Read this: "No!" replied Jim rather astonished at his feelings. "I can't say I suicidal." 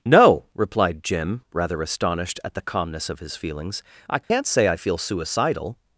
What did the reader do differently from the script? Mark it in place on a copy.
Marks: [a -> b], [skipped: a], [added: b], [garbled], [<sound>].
"No!" replied Jim rather astonished at [added: the calmness of] his feelings. "I can't [dropout] say I [added: feel] suicidal."